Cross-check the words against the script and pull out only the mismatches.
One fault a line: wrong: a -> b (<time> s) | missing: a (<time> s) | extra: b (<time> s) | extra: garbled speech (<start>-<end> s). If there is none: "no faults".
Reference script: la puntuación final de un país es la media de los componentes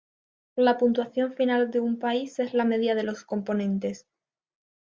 no faults